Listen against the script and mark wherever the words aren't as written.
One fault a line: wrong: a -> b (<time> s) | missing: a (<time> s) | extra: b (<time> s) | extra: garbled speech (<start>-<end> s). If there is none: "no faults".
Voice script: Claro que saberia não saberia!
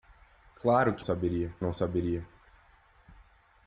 no faults